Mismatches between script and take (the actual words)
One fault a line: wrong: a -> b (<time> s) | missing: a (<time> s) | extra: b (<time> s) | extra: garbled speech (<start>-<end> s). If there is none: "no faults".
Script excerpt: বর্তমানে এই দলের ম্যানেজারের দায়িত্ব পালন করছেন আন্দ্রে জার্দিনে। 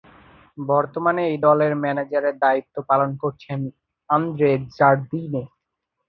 no faults